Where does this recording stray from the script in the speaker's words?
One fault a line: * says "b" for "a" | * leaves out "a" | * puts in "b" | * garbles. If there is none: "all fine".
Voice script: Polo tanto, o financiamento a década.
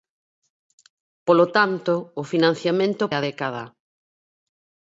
all fine